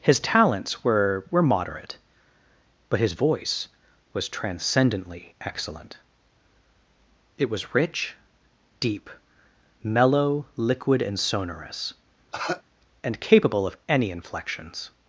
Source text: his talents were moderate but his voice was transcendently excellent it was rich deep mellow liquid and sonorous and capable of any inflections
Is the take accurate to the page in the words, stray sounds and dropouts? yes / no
no